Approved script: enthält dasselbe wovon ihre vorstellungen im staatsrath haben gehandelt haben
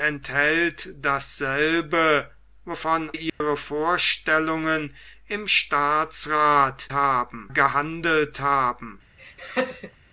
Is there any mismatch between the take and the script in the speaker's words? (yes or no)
no